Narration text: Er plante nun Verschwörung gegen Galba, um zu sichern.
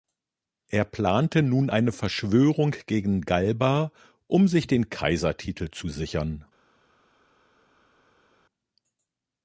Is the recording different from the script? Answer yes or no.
yes